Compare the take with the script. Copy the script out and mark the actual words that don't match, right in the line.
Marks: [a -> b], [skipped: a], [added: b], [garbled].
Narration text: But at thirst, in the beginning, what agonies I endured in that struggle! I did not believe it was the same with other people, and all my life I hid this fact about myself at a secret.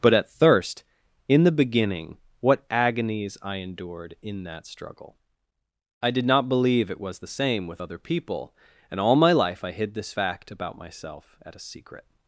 But at thirst, in the beginning, what agonies I endured in that struggle! I did not believe it was the same with other people, and all my life I hid this fact about myself at a secret.